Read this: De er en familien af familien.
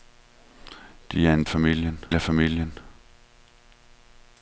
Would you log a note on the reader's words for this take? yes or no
no